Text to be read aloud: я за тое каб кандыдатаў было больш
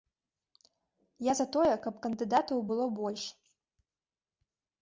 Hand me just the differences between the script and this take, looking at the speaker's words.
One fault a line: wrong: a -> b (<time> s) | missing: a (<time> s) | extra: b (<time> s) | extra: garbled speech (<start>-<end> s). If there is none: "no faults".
no faults